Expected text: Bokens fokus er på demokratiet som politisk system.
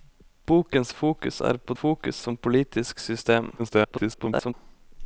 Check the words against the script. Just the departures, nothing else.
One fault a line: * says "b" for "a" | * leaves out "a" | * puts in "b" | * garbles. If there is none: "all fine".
* says "fokus" for "demokratiet"
* garbles